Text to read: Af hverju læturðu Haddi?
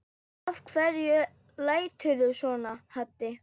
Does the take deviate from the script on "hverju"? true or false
false